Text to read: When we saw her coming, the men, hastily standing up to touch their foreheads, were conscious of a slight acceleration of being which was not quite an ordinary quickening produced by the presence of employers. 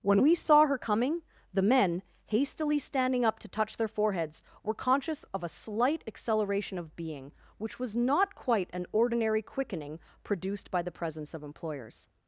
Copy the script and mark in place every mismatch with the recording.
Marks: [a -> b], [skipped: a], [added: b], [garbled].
When we saw her coming, the men, hastily standing up to touch their foreheads, were conscious of a slight acceleration of being which was not quite an ordinary quickening produced by the presence of employers.